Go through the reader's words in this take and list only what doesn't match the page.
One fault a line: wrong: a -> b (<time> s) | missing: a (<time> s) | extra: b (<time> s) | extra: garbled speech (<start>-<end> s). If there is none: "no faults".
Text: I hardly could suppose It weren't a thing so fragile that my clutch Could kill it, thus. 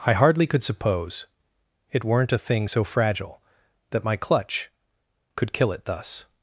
no faults